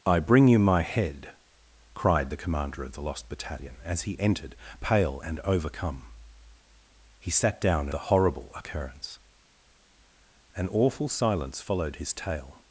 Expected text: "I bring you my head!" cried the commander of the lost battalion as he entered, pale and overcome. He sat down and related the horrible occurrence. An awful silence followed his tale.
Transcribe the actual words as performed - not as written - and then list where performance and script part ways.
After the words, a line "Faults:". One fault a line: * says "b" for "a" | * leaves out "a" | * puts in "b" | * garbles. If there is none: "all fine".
"I bring you my head!" cried the commander of the lost battalion as he entered, pale and overcome. He sat down the horrible occurrence. An awful silence followed his tale.
Faults:
* leaves out "and related"